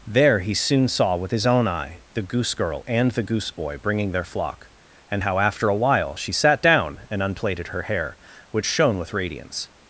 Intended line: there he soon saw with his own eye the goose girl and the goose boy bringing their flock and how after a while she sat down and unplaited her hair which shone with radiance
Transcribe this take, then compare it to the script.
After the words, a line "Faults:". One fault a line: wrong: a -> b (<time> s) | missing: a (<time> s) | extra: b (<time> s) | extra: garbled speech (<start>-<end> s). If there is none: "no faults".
there he soon saw with his own eye the goose girl and the goose boy bringing their flock and how after a while she sat down and unplaited her hair which shone with radiance
Faults:
no faults